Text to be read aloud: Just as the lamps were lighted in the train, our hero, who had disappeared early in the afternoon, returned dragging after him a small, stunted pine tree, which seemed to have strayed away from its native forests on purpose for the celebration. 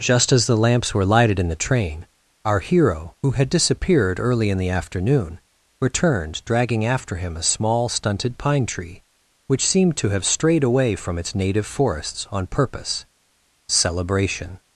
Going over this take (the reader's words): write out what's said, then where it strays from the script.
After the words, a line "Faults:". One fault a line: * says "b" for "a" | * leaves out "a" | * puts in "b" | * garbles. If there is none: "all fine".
Just as the lamps were lighted in the train, our hero, who had disappeared early in the afternoon, returned dragging after him a small, stunted pine tree, which seemed to have strayed away from its native forests on purpose celebration.
Faults:
* leaves out "for the"